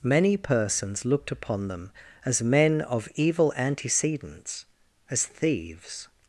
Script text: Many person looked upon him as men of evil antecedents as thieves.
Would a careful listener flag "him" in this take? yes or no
yes